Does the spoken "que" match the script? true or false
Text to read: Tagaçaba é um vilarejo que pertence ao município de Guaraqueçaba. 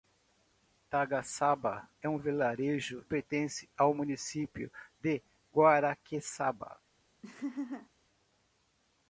false